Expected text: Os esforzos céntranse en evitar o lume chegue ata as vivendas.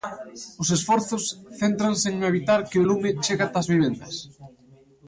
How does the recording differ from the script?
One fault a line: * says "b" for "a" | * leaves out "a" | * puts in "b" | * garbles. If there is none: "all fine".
* puts in "que"